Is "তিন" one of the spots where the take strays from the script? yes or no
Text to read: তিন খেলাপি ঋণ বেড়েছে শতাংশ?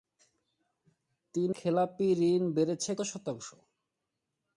no